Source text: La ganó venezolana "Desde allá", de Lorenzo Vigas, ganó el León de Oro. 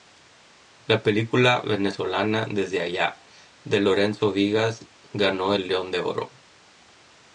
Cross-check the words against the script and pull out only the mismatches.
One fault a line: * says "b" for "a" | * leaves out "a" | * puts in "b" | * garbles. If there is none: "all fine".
* says "película" for "ganó"